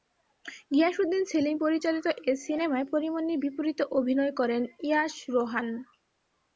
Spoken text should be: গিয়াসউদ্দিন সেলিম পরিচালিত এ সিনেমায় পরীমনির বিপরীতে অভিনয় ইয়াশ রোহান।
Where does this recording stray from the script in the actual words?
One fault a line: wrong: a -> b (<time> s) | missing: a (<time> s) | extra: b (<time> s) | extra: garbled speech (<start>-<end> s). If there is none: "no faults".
extra: করেন (4.4 s)